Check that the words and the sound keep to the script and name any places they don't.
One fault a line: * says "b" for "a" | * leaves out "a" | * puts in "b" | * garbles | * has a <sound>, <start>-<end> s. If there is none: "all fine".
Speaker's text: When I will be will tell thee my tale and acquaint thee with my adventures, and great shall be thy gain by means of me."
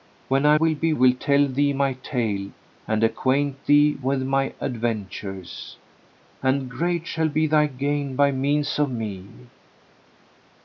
all fine